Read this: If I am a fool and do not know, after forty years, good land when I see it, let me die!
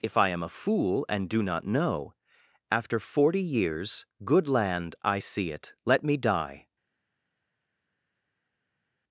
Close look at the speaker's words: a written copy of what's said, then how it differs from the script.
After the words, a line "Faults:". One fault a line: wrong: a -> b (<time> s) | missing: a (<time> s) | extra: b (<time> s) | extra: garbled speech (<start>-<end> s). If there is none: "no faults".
If I am a fool and do not know, after forty years, good land I see it, let me die!
Faults:
missing: when (5.0 s)